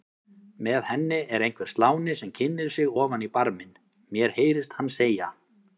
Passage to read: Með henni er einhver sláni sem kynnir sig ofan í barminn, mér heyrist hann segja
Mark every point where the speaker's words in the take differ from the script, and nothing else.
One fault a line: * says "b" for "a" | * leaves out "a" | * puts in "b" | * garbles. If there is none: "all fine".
all fine